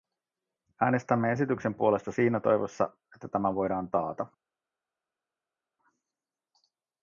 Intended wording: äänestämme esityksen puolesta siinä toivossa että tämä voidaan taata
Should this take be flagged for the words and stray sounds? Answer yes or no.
no